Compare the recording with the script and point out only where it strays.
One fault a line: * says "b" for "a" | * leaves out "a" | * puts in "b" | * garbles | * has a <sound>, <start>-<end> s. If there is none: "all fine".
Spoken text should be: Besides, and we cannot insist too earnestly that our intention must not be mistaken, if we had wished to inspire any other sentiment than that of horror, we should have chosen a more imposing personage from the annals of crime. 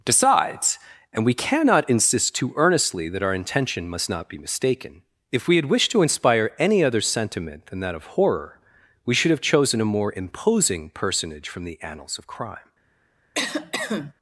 * says "Decides" for "Besides"
* has a cough, 13.3-14.1 s